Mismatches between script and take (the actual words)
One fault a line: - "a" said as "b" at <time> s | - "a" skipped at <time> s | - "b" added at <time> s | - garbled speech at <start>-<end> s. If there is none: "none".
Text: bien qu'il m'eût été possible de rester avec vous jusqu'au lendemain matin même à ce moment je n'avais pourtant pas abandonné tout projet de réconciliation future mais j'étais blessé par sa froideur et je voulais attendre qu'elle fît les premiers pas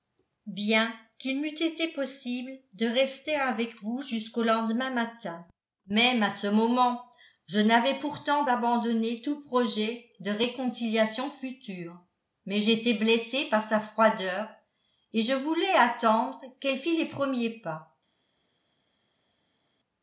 - "pas" skipped at 8.5 s